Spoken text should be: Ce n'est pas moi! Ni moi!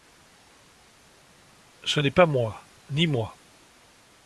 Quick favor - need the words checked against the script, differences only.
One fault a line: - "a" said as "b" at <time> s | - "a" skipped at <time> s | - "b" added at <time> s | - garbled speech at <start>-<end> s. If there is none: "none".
none